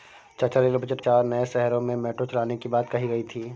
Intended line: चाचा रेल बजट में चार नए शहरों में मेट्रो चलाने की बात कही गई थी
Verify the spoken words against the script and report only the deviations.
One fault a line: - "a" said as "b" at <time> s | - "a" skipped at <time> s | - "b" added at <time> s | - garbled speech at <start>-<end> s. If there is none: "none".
- "में" skipped at 1.0 s